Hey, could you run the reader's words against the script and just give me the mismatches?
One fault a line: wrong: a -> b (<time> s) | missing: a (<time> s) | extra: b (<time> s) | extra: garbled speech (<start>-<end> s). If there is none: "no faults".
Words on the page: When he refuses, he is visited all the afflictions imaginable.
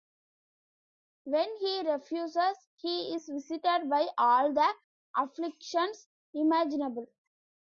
extra: by (3.9 s)